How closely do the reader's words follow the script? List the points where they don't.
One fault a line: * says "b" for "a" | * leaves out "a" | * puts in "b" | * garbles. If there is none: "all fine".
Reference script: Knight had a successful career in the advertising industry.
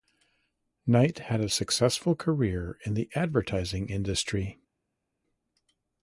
all fine